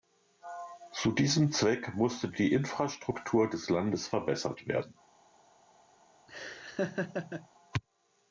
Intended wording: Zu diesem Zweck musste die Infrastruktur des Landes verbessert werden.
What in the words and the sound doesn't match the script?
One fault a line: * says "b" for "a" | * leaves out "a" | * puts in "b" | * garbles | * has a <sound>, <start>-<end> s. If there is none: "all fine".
* has a laugh, 6.3-7.5 s